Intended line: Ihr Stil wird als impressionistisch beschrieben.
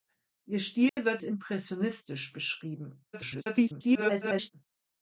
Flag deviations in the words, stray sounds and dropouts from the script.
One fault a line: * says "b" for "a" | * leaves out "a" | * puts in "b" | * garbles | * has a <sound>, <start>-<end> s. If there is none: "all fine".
* has a dropout, 0.9-1.0 s
* leaves out "als"
* garbles